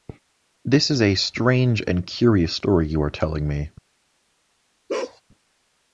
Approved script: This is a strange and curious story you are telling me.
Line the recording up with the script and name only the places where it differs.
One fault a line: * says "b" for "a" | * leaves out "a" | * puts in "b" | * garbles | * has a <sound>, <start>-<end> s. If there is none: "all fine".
* has a bark, 4.9-5.2 s